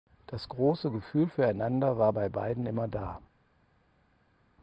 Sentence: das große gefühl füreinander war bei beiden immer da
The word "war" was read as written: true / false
true